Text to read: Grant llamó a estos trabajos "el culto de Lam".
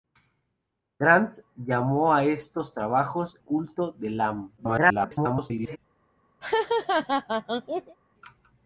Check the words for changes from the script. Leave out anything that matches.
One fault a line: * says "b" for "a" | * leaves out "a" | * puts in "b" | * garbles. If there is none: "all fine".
* leaves out "el"
* garbles